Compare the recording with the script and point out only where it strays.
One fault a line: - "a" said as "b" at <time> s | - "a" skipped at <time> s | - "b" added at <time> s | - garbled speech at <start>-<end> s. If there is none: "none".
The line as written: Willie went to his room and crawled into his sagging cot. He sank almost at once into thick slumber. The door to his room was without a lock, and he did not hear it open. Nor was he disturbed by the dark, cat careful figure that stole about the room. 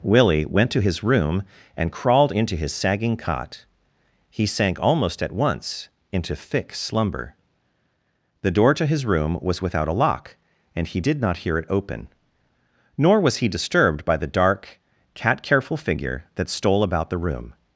none